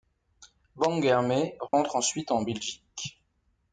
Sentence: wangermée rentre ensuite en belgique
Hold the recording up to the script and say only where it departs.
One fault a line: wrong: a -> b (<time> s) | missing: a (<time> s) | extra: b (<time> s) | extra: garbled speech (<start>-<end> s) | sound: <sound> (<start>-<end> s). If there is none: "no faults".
sound: dropout (1.7-1.7 s)